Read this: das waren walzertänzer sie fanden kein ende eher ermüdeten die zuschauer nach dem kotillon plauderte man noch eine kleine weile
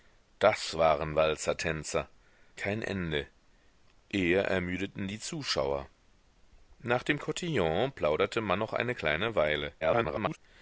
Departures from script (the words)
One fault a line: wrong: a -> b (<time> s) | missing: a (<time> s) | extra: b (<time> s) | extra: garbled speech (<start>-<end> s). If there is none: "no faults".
missing: sie fanden (2.1 s)
extra: garbled speech (9.8-10.4 s)